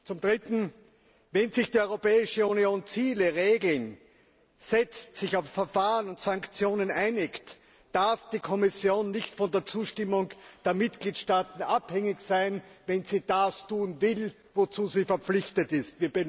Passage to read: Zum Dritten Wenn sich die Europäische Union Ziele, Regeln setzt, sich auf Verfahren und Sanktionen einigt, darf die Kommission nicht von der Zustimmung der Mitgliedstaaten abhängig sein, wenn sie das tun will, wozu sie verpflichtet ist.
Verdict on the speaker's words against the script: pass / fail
pass